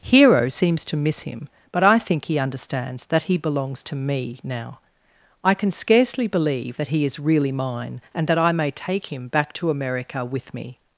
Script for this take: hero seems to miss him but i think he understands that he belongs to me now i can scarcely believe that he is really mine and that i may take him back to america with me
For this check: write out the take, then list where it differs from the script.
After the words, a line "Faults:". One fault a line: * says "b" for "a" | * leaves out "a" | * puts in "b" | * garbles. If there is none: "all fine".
hero seems to miss him but i think he understands that he belongs to me now i can scarcely believe that he is really mine and that i may take him back to america with me
Faults:
all fine